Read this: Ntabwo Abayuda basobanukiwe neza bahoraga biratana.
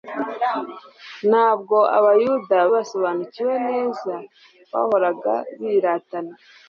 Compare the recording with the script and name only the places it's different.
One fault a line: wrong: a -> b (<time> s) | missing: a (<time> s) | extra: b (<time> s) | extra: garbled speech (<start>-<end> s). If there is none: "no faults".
no faults